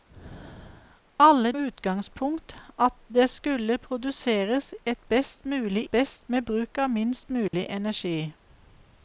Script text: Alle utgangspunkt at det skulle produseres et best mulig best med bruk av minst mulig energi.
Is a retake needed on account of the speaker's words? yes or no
no